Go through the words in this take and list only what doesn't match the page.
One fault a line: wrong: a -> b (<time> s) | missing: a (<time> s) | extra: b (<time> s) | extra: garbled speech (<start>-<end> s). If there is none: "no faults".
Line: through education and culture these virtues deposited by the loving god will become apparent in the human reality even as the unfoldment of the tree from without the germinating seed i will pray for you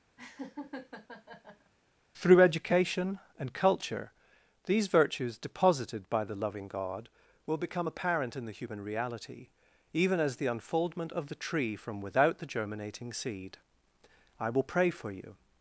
no faults